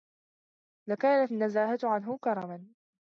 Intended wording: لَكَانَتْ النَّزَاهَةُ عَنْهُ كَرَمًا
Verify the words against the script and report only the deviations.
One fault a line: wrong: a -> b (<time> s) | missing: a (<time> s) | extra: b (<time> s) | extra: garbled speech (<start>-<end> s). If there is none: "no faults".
no faults